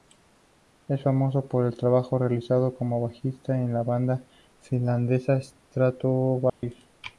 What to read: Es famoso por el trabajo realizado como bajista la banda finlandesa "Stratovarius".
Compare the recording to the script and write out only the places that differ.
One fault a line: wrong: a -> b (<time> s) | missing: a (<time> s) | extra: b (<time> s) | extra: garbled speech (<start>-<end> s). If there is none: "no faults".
extra: en (3.6 s)